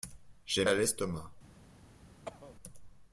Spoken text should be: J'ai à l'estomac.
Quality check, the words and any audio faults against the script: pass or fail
fail